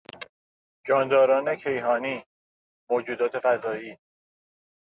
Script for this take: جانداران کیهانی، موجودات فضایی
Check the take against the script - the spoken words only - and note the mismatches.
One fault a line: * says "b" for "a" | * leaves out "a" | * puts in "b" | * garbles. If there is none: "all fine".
all fine